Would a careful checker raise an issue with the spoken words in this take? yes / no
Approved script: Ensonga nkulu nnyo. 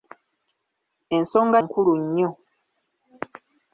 no